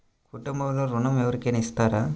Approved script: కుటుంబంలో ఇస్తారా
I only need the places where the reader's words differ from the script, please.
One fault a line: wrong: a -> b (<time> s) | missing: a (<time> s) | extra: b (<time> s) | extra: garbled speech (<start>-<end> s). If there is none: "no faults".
extra: ఋణం ఎవరికైనా (0.8 s)